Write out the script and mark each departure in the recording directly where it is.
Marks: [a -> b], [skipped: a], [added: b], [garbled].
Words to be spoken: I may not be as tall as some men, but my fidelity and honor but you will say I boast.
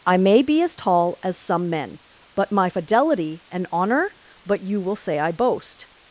I may [skipped: not] be as tall as some men, but my fidelity and honor but you will say I boast.